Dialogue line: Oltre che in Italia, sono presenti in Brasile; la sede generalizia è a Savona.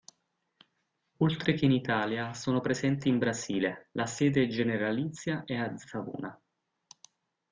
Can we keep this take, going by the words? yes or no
yes